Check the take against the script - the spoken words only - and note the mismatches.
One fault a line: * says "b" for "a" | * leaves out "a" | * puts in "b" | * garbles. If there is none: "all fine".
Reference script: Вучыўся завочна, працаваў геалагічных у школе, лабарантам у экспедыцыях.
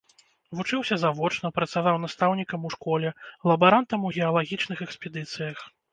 * says "настаўнікам" for "геалагічных"
* puts in "геалагічных"